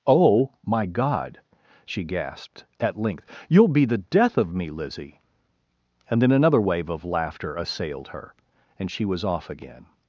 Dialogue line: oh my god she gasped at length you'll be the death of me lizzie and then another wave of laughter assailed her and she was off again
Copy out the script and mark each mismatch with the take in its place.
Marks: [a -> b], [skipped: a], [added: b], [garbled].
oh my god she gasped at length you'll be the death of me lizzie and then another wave of laughter assailed her and she was off again